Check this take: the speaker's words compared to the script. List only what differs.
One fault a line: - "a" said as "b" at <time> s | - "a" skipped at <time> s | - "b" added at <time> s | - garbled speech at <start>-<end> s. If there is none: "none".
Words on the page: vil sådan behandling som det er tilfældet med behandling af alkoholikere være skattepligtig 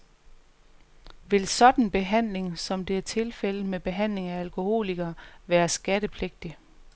none